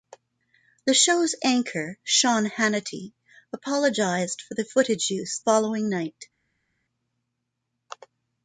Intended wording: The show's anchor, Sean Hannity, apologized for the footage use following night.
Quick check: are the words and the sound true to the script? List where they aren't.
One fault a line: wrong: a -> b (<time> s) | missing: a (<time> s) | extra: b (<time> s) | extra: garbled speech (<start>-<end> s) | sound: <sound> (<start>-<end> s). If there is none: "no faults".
no faults